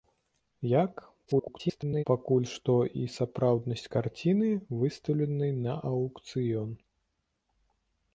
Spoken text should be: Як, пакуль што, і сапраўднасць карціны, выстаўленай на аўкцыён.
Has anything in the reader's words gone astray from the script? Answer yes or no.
yes